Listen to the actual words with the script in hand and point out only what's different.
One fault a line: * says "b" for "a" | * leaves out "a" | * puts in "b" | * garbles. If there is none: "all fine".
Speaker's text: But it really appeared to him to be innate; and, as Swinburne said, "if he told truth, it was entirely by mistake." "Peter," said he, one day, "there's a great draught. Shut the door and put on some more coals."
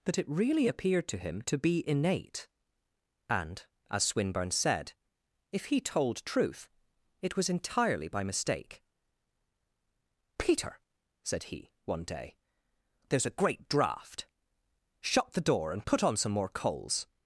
* says "That" for "But"